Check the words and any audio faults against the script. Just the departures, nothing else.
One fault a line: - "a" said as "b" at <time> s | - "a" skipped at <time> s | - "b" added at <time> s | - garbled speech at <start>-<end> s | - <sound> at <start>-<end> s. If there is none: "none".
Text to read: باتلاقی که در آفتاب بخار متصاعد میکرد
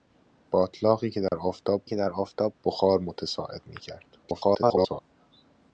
- dropout at 1.3-1.3 s
- "که در آفتاب" added at 1.8 s
- garbled speech at 4.2-5.0 s